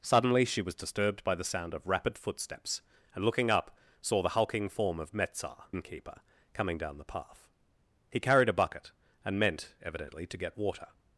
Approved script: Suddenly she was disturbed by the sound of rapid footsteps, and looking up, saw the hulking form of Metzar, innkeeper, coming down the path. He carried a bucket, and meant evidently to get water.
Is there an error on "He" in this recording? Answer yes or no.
no